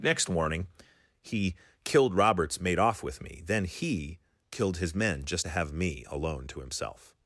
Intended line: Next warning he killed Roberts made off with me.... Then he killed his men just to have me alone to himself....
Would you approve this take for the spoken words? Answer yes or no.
yes